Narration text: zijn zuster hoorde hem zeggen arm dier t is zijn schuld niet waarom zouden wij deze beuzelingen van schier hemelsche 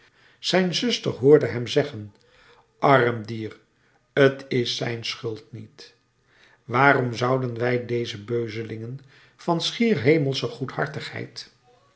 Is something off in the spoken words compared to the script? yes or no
no